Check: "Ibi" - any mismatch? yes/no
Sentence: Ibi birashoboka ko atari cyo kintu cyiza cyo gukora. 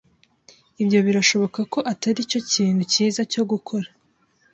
yes